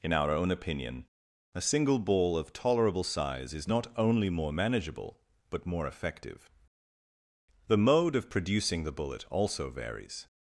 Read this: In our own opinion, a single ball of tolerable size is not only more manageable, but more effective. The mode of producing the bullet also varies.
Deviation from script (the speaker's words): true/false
false